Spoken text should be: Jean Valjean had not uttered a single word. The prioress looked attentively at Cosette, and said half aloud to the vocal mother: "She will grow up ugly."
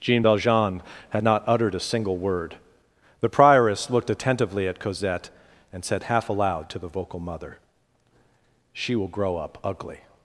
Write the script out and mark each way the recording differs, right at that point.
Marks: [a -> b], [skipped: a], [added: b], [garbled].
Jean Valjean had not uttered a single word. The prioress looked attentively at Cosette, and said half aloud to the vocal mother: "She will grow up ugly."